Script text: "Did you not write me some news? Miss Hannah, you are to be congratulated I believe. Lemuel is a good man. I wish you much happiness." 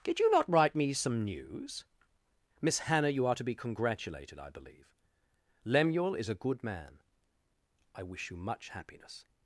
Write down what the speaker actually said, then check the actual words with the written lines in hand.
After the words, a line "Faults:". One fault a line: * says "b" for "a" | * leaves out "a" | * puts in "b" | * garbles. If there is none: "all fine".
"Did you not write me some news? Miss Hannah, you are to be congratulated I believe. Lemuel is a good man. I wish you much happiness."
Faults:
all fine